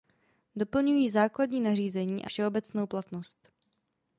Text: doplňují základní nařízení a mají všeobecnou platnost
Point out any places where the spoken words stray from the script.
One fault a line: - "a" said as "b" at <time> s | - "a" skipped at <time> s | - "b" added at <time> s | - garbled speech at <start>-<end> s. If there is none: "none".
- "mají" skipped at 2.3 s